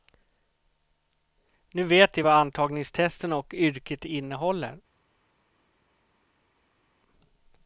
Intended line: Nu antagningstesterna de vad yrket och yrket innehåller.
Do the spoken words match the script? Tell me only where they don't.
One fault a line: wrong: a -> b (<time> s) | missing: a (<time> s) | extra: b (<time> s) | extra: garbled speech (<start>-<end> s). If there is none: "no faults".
wrong: antagningstesterna -> vet (1.8 s)
wrong: yrket -> antagningstesterna (2.3 s)